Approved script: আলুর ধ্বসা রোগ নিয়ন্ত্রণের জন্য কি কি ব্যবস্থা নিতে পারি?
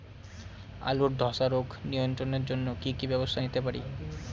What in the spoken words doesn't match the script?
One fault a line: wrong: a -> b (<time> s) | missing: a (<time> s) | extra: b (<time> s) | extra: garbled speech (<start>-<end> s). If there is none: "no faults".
no faults